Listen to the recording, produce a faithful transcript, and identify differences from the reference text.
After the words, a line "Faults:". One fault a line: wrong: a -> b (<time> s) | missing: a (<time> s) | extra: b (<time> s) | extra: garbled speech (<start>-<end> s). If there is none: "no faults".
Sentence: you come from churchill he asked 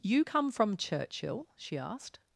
you come from churchill she asked
Faults:
wrong: he -> she (1.5 s)